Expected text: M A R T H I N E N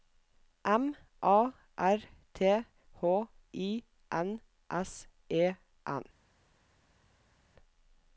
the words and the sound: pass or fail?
fail